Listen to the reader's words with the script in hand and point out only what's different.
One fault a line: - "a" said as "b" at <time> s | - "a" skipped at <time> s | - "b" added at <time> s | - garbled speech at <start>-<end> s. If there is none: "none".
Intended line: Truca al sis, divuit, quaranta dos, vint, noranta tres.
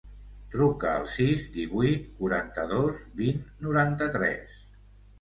none